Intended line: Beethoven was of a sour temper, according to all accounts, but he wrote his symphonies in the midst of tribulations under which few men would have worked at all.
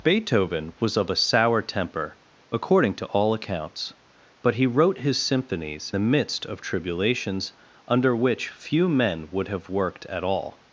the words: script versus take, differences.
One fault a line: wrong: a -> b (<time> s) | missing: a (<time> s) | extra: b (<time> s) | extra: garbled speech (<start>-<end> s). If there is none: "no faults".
missing: in (5.9 s)